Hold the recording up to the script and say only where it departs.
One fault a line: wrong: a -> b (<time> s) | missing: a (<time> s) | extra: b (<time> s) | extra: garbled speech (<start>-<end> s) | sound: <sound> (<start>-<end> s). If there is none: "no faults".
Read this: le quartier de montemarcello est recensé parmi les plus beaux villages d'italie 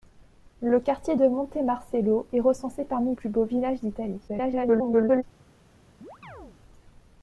missing: les (3.2 s)
extra: garbled speech (4.3-5.2 s)
sound: chirp (6.0-6.6 s)